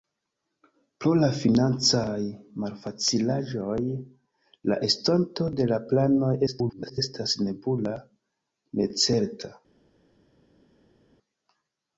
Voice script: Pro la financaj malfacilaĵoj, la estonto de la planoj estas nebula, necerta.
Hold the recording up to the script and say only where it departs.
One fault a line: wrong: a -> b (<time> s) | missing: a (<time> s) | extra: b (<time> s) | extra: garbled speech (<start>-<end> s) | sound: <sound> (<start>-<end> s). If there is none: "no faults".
extra: garbled speech (6.5-7.0 s)